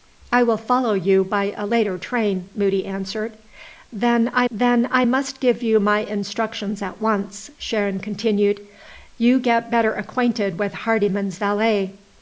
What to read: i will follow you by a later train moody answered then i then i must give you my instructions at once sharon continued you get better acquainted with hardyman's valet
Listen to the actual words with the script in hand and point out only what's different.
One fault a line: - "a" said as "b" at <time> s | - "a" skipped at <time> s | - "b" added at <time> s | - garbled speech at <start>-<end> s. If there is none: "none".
none